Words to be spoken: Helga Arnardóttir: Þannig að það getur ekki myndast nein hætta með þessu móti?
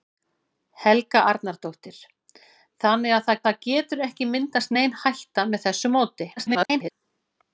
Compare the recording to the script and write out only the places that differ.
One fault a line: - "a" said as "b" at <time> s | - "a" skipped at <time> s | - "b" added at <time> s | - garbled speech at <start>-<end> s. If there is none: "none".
- "það" added at 3.5 s
- garbled speech at 6.4-6.9 s